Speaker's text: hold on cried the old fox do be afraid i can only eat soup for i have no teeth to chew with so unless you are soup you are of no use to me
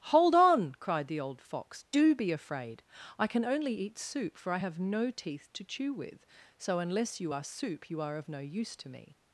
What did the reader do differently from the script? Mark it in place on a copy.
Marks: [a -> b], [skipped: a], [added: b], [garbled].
hold on cried the old fox do be afraid i can only eat soup for i have no teeth to chew with so unless you are soup you are of no use to me